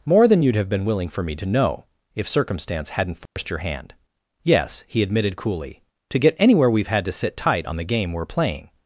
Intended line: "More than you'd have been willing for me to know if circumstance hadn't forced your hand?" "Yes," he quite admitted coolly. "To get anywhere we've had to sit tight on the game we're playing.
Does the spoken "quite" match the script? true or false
false